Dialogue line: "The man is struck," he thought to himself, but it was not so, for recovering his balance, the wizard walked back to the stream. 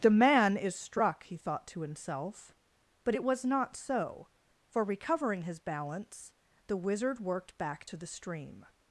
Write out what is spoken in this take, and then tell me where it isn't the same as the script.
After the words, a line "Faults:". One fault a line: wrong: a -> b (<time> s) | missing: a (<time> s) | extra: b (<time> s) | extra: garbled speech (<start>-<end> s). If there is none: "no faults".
"The man is struck," he thought to himself, but it was not so, for recovering his balance, the wizard worked back to the stream.
Faults:
wrong: walked -> worked (7.2 s)